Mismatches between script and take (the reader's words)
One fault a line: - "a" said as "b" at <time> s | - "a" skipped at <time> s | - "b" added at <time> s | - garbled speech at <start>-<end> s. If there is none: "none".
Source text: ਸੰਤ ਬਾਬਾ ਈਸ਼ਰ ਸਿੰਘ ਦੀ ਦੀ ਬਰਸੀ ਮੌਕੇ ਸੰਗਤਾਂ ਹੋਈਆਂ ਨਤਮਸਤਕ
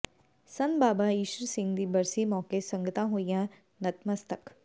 - "ਦੀ" skipped at 1.9 s